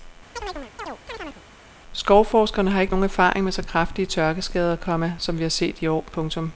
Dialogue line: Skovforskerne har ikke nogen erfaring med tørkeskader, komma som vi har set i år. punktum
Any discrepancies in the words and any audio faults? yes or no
yes